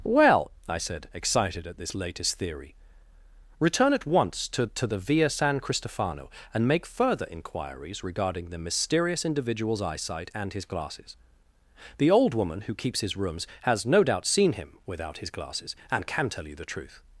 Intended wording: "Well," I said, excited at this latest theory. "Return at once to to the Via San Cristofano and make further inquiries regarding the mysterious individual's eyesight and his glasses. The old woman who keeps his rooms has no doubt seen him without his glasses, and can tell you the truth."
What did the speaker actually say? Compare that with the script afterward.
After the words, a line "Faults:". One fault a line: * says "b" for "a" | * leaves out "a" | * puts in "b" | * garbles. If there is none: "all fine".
"Well," I said, excited at this latest theory. "Return at once to to the Via San Cristofano and make further inquiries regarding the mysterious individual's eyesight and his glasses. The old woman who keeps his rooms has no doubt seen him without his glasses, and can tell you the truth."
Faults:
all fine